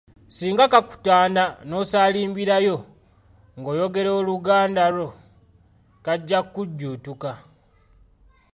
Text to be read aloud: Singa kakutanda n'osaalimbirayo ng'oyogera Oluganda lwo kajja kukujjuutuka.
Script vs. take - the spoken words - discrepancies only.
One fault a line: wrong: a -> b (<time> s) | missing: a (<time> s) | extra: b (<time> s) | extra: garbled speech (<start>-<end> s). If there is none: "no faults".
no faults